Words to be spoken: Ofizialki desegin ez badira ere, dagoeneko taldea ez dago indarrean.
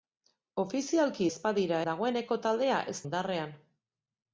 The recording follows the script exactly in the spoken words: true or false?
false